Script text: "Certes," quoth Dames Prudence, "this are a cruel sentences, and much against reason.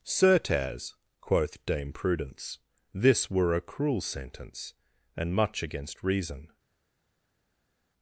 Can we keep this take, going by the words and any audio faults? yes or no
no